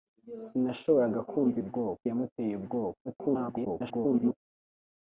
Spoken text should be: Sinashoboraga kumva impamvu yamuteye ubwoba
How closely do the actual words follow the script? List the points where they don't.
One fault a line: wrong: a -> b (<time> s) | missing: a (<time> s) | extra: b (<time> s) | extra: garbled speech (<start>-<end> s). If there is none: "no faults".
wrong: impamvu -> ubwoba (1.6 s)
extra: garbled speech (3.0-4.4 s)